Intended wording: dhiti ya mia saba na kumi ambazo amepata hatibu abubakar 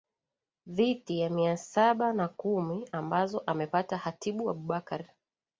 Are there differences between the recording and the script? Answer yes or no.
no